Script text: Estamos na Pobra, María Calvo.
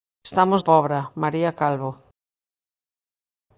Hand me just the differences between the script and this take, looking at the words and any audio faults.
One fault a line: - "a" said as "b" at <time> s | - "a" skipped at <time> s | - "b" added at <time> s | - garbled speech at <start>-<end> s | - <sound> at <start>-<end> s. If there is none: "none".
- "na" skipped at 0.6 s